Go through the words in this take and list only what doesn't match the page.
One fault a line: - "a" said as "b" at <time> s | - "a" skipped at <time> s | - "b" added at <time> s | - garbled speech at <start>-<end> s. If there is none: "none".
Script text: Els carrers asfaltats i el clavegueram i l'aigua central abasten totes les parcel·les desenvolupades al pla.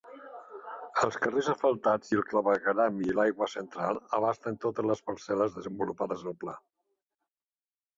none